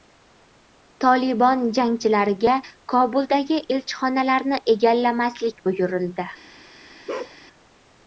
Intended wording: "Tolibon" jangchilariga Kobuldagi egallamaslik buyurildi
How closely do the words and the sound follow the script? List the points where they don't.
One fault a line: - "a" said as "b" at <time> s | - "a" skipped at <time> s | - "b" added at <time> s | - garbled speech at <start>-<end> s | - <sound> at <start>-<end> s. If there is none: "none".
- "elchixonalarni" added at 3.8 s
- bark at 7.1-7.4 s